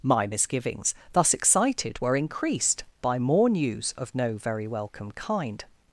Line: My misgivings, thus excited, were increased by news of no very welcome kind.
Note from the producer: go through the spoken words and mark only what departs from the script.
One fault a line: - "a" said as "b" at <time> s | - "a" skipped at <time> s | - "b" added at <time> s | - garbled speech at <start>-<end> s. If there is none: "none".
- "more" added at 3.2 s